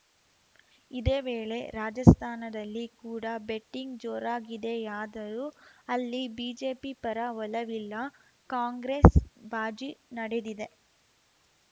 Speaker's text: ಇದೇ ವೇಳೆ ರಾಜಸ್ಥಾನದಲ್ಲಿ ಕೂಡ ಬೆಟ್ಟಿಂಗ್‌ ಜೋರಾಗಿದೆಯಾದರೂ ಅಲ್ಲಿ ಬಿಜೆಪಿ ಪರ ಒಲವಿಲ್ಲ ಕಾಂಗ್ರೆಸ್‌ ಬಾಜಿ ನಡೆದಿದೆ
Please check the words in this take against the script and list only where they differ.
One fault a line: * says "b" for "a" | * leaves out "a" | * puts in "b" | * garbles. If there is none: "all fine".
all fine